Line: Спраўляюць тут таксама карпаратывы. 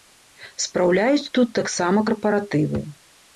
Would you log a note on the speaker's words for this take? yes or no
no